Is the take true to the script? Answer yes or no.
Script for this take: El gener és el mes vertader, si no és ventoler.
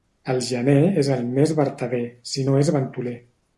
yes